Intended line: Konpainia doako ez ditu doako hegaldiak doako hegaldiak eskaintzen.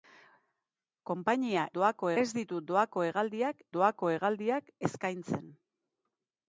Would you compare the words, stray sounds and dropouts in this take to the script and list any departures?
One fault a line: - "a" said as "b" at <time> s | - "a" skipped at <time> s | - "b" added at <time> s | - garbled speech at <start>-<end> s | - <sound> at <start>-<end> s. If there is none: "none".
none